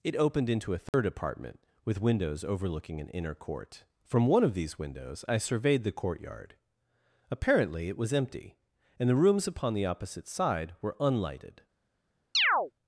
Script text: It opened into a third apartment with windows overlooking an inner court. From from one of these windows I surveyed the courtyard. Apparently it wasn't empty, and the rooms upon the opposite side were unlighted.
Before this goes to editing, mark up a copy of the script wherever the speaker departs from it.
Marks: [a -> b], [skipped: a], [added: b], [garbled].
It opened into a third apartment with windows overlooking an inner court. From [skipped: from] one of these windows I surveyed the courtyard. Apparently it [wasn't -> was] empty, and the rooms upon the opposite side were unlighted.